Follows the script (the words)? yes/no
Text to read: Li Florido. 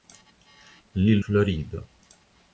yes